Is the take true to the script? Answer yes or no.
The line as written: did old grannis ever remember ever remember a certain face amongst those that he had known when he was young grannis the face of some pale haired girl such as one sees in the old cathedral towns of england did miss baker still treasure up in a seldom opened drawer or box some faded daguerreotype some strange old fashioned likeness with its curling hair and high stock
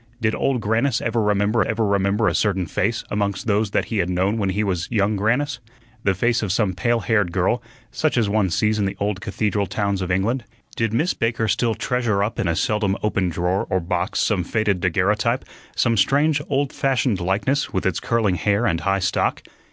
yes